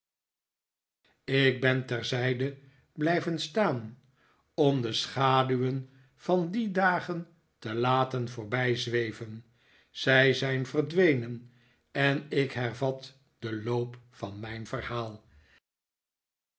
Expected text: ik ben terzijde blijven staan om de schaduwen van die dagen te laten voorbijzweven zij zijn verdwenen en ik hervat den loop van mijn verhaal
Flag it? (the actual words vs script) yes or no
no